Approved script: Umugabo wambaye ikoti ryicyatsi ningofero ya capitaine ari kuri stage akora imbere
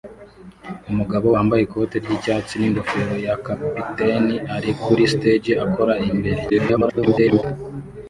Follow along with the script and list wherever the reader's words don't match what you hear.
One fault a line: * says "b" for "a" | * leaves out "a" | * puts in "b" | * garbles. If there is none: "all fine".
* garbles